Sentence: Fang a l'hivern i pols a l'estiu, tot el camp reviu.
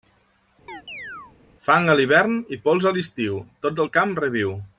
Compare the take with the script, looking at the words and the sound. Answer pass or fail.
fail